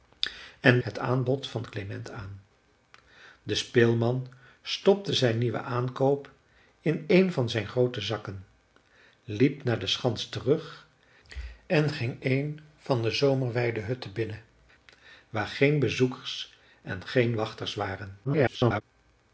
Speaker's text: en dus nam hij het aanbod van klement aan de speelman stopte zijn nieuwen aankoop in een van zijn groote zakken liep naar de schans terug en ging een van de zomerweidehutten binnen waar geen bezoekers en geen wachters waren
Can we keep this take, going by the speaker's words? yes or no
no